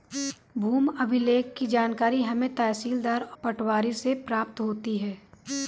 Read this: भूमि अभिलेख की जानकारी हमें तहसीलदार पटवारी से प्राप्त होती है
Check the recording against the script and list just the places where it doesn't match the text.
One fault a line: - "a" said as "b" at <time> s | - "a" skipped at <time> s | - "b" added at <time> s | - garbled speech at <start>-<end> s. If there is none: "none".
none